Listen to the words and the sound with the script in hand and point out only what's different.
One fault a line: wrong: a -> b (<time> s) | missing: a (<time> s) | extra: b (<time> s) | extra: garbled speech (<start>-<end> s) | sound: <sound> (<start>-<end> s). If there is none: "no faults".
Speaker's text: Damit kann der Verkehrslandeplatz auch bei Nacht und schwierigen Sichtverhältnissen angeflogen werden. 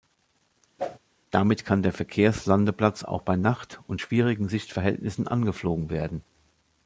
sound: whoosh (0.8-1.0 s)